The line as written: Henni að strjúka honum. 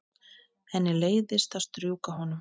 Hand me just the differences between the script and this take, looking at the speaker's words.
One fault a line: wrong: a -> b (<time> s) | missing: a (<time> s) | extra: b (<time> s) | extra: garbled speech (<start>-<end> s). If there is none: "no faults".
extra: leiðist (1.0 s)